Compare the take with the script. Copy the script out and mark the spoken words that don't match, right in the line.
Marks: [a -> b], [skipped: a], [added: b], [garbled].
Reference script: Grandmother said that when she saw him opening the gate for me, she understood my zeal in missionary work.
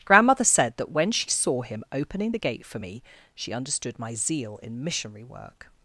Grandmother said that when she saw him opening the gate for me, she understood my zeal in missionary work.